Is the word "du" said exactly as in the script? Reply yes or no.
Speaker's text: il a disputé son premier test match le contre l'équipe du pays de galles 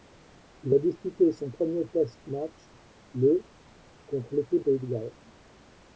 no